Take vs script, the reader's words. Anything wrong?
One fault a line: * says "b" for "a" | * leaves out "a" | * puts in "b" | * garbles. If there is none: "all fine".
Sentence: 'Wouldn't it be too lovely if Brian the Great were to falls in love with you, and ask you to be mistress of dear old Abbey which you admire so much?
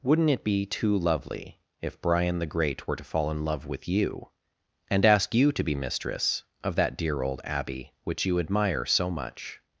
* says "fall" for "falls"
* puts in "that"